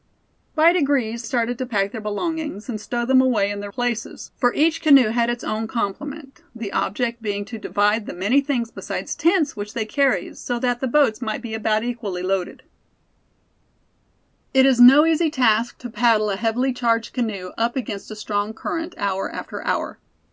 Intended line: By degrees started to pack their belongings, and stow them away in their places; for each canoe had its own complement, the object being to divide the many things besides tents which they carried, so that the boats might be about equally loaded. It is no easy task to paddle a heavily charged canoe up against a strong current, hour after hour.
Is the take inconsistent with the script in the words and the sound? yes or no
no